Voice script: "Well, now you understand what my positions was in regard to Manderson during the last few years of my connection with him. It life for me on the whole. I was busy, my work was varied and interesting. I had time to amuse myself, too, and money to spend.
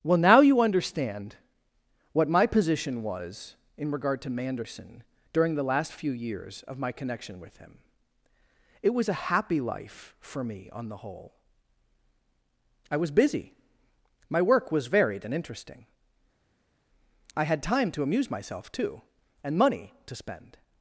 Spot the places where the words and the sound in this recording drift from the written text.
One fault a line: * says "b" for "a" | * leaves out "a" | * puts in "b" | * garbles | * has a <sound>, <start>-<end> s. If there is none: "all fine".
* says "position" for "positions"
* puts in "was a happy"